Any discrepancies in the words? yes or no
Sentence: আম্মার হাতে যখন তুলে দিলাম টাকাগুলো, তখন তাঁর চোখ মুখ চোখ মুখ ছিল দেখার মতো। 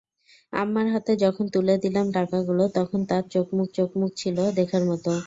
no